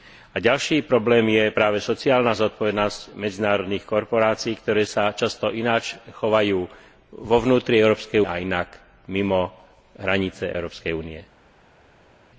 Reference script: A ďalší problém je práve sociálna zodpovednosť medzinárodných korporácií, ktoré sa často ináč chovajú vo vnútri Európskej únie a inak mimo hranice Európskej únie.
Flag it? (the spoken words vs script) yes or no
yes